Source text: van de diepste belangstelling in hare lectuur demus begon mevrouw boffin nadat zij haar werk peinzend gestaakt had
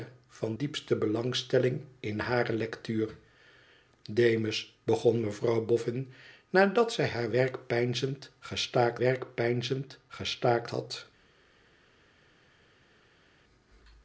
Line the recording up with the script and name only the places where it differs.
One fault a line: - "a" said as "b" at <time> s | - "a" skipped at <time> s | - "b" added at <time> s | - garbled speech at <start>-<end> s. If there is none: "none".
- "de" skipped at 0.6 s
- "werk peinzend gestaakt" added at 9.0 s